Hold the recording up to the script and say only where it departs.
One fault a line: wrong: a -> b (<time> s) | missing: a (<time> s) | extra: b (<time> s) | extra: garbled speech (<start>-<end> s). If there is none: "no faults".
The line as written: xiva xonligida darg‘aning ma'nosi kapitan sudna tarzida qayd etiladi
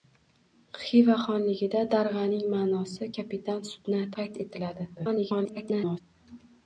missing: tarzida (4.1 s)
extra: garbled speech (5.0-6.0 s)